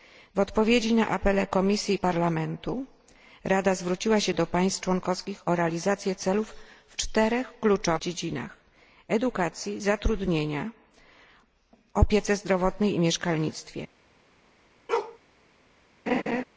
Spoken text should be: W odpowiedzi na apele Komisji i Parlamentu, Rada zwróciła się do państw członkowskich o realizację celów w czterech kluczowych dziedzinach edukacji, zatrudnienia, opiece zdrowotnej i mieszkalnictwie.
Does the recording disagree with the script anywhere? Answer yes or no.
no